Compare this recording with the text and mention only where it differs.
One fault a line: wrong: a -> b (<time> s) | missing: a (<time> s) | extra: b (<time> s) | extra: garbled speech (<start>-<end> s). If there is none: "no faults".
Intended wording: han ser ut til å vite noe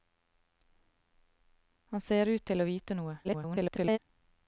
extra: garbled speech (3.2-4.0 s)